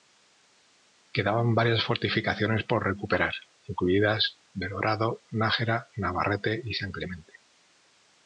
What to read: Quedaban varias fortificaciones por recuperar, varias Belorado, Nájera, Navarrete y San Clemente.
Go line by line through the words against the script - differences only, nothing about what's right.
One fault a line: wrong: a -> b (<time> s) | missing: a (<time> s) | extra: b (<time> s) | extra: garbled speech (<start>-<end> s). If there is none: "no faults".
wrong: varias -> incluidas (3.6 s)